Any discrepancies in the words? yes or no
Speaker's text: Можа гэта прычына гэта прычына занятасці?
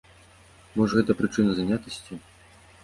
yes